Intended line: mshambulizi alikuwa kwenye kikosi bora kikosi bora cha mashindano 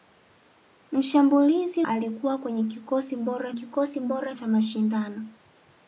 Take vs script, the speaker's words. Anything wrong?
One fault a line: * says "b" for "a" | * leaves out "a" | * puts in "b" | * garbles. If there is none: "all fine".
all fine